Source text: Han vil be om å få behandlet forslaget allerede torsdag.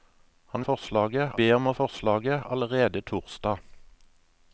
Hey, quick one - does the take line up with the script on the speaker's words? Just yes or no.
no